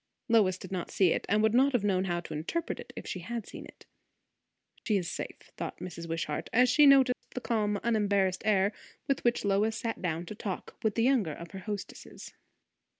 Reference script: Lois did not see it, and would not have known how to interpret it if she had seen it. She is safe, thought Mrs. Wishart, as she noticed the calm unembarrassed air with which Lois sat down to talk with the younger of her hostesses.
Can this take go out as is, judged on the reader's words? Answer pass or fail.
pass